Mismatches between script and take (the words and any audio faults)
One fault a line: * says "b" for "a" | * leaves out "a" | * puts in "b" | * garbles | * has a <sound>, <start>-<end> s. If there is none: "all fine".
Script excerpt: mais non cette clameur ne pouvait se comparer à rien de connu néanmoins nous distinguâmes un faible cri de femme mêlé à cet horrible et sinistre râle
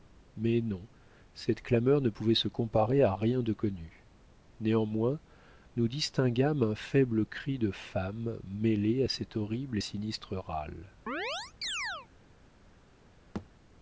* has a chirp, 11.1-12.1 s
* has a thud, 13.3-13.5 s